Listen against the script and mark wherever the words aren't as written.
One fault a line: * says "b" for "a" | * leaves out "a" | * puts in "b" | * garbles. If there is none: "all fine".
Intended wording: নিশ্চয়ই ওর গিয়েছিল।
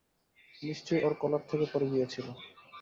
* puts in "কলার থেকে পড়ে"